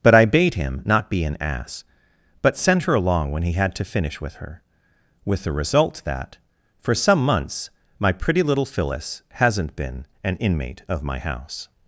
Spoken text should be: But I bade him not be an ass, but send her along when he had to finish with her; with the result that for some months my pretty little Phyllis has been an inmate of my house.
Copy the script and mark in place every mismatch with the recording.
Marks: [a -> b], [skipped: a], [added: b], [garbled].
But I bade him not be an ass, but send her along when he had to finish with her; with the result that for some months my pretty little Phyllis [has -> hasn't] been an inmate of my house.